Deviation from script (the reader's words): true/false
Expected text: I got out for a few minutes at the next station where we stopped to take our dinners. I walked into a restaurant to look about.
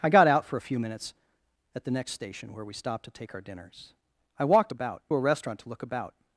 true